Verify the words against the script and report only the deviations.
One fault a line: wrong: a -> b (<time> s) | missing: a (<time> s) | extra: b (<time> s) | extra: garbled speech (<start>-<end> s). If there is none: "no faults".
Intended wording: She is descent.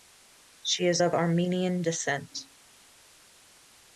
extra: of Armenian (1.0 s)